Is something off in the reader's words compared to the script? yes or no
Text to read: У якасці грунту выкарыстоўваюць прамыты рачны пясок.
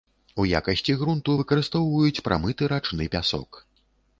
no